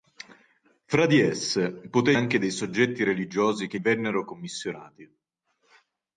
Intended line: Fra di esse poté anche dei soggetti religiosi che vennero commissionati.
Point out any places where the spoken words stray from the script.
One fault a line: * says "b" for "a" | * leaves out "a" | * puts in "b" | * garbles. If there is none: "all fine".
all fine